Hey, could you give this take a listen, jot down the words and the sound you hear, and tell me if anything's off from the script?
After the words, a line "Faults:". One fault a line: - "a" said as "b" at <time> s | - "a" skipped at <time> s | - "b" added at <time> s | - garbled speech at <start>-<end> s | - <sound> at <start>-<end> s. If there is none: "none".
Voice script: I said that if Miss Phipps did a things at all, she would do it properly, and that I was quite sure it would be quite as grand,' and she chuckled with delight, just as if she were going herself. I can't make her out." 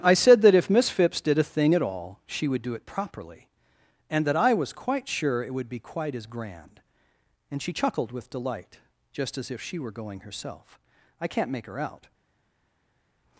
I said that if Miss Phipps did a thing at all, she would do it properly, and that I was quite sure it would be quite as grand,' and she chuckled with delight, just as if she were going herself. I can't make her out."
Faults:
- "things" said as "thing" at 1.4 s